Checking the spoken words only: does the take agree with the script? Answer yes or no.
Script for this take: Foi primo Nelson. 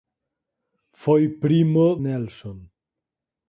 yes